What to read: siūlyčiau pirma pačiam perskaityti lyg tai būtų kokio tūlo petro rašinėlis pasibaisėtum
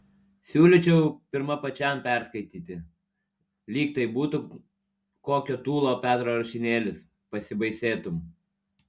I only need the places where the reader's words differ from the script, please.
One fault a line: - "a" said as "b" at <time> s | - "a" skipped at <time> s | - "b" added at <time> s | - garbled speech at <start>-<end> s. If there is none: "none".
none